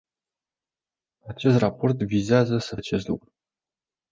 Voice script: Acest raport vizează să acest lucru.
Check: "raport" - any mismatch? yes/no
no